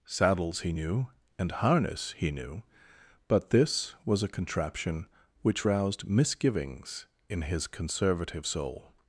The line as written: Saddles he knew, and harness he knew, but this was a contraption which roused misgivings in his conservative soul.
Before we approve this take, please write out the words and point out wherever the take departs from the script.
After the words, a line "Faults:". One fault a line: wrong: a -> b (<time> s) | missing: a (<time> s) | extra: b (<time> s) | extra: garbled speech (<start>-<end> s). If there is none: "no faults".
Saddles he knew, and harness he knew, but this was a contraption which roused misgivings in his conservative soul.
Faults:
no faults